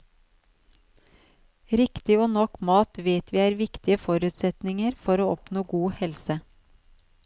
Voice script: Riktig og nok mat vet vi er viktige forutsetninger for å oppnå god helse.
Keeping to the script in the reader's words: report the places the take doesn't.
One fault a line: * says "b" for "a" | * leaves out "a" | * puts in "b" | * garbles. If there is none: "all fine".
all fine